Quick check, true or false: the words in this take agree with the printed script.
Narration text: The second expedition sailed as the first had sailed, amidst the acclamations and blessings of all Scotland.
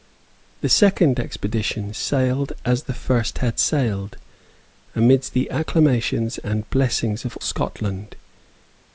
false